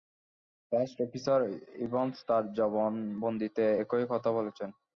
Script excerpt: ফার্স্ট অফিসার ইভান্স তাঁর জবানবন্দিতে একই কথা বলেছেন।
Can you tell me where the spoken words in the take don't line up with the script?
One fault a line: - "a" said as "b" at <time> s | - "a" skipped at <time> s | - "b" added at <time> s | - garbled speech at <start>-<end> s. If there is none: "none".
none